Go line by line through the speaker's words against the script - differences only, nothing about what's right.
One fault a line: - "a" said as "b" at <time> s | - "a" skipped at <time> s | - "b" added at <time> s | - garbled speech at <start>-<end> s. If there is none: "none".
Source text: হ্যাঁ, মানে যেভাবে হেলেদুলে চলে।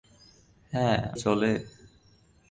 - "মানে যেভাবে হেলেদুলে" skipped at 1.0 s